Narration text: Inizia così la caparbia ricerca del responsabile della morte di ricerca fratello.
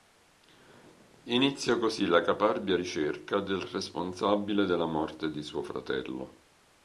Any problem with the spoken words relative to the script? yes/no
yes